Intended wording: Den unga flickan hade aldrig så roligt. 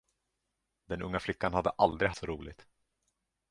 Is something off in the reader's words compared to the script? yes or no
no